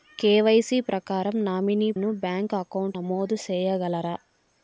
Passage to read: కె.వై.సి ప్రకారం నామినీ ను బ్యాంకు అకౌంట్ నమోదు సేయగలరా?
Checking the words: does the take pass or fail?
pass